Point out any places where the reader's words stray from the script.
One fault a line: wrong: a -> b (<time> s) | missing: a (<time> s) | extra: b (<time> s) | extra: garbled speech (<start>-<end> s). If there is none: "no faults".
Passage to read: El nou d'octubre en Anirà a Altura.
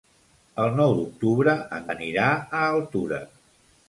no faults